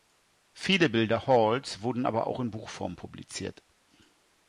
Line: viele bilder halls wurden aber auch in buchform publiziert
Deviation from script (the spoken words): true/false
false